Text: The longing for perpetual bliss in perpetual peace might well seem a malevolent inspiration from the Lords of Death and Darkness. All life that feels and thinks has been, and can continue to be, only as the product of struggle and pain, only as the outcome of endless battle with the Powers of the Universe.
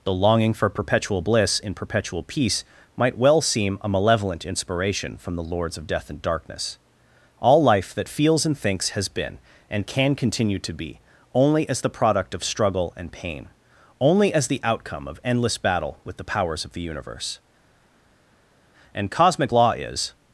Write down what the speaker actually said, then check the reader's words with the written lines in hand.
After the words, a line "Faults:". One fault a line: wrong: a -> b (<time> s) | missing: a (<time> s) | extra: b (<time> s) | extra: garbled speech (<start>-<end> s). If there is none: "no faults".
The longing for perpetual bliss in perpetual peace might well seem a malevolent inspiration from the Lords of Death and Darkness. All life that feels and thinks has been, and can continue to be, only as the product of struggle and pain, only as the outcome of endless battle with the Powers of the Universe. And cosmic law is
Faults:
extra: And cosmic law is (18.9 s)